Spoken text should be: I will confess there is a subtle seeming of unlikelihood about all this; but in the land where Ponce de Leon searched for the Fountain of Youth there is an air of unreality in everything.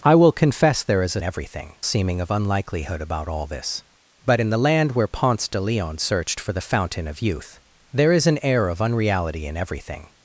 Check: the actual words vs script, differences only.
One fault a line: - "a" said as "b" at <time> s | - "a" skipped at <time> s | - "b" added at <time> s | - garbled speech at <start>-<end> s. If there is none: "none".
- "subtle" said as "everything" at 1.2 s